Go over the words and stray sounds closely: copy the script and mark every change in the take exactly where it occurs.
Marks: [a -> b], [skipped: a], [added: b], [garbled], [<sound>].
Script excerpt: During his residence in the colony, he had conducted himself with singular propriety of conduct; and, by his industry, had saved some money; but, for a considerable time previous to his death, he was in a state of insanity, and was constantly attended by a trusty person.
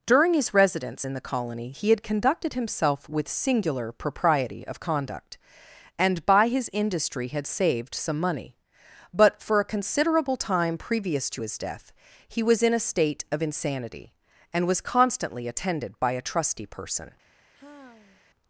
During his residence in the colony, he had conducted himself with singular propriety of conduct; and, by his industry, had saved some money; but, for a considerable time previous to his death, he was in a state of insanity, and was constantly attended by a trusty person. [sigh]